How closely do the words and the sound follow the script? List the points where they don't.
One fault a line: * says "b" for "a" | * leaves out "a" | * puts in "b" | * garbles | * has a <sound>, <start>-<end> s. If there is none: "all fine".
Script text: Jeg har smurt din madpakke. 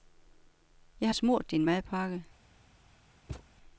* has a thud, 3.3-3.5 s